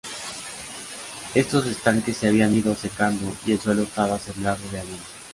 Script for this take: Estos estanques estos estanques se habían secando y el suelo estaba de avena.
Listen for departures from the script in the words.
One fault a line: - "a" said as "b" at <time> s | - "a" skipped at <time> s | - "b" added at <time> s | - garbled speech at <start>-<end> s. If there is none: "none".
- "estos estanques" skipped at 2.2 s
- "ido" added at 2.5 s
- "sembrado" added at 4.2 s